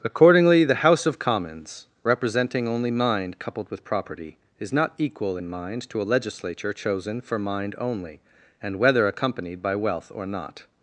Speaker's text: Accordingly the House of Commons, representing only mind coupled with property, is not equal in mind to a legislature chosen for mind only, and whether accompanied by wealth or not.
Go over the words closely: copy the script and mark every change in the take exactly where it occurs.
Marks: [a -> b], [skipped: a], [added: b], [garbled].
Accordingly the House of Commons, representing only mind coupled with property, is not equal in mind to a legislature chosen for mind only, and whether accompanied by wealth or not.